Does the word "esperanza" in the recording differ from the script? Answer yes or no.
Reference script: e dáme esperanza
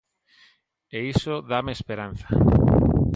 no